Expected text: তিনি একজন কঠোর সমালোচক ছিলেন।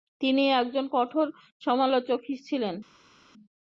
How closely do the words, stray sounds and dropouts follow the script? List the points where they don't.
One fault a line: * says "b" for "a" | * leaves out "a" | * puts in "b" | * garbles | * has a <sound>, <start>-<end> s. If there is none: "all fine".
all fine